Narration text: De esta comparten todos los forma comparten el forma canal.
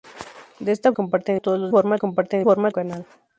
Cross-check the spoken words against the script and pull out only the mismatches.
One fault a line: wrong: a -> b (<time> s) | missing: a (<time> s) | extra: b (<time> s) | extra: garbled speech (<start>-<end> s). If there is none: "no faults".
no faults